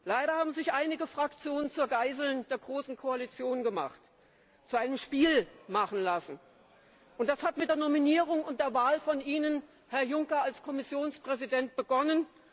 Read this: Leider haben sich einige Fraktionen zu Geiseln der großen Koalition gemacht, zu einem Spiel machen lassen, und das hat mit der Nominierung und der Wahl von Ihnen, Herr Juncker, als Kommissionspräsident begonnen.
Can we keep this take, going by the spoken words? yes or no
yes